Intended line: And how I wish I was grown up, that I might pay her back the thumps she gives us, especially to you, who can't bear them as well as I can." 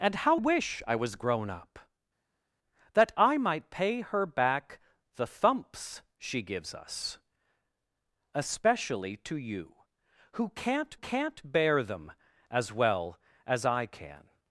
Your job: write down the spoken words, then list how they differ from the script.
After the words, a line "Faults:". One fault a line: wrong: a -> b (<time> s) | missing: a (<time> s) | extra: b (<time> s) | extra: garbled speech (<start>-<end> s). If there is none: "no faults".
And how wish I was grown up, that I might pay her back the thumps she gives us, especially to you, who can't can't bear them as well as I can."
Faults:
missing: I (0.4 s)
extra: can't (10.9 s)